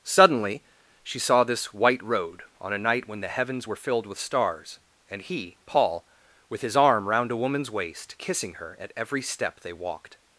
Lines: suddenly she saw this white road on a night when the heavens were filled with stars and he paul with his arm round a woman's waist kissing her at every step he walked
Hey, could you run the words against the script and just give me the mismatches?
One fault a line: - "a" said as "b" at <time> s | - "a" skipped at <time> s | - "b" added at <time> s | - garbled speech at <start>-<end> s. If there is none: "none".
- "he" said as "they" at 9.6 s